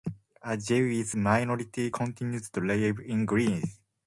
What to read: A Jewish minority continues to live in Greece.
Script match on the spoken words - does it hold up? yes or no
yes